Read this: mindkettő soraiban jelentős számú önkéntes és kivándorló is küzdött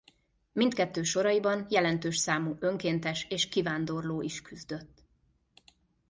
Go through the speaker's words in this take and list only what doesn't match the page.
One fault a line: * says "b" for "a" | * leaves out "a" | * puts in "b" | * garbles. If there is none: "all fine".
all fine